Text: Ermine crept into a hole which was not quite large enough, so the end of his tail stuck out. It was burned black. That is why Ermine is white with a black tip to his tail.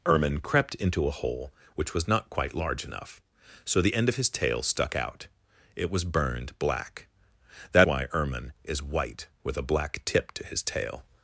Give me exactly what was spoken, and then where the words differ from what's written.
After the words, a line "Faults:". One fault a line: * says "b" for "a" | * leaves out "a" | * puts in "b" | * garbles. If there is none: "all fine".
Ermine crept into a hole which was not quite large enough, so the end of his tail stuck out. It was burned black. That why Ermine is white with a black tip to his tail.
Faults:
* leaves out "is"